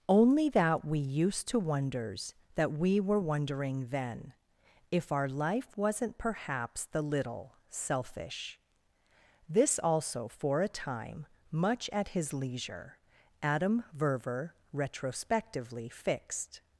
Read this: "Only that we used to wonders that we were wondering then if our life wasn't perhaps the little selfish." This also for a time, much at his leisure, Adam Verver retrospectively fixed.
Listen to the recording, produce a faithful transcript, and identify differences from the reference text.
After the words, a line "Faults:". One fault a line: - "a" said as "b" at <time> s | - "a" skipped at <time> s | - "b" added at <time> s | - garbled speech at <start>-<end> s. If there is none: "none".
"Only that we used to wonders that we were wondering then if our life wasn't perhaps the little selfish." This also for a time, much at his leisure, Adam Verver retrospectively fixed.
Faults:
none